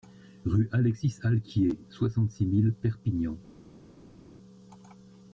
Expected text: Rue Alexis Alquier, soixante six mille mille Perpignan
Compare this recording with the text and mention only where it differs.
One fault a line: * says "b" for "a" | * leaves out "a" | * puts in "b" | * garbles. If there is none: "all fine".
* leaves out "mille"